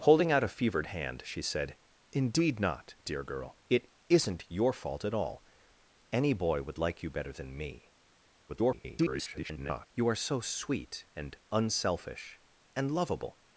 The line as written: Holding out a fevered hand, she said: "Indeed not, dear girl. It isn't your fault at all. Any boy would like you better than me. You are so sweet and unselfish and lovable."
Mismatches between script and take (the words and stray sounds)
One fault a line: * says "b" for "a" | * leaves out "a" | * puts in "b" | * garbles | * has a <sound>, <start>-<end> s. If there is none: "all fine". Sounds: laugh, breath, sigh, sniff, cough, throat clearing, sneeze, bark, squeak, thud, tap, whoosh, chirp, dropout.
* garbles